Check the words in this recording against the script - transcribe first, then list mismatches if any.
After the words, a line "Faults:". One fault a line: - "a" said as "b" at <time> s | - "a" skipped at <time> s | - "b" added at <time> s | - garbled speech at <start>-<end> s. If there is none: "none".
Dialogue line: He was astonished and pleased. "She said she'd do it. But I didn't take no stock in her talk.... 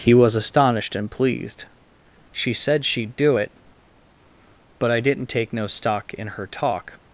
He was astonished and pleased. "She said she'd do it. But I didn't take no stock in her talk....
Faults:
none